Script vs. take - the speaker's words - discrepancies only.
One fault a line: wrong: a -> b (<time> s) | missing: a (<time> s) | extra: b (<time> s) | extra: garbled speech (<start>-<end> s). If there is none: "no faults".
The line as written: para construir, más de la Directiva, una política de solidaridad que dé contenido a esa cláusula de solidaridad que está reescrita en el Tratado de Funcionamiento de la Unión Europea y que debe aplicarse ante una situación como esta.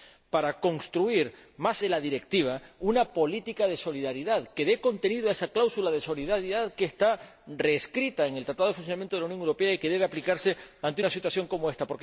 no faults